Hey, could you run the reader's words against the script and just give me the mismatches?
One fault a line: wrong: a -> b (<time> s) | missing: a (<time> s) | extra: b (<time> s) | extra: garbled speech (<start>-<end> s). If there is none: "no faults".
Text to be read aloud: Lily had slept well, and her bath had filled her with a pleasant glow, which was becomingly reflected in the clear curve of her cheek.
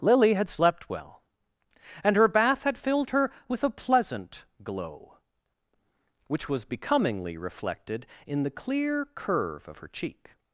no faults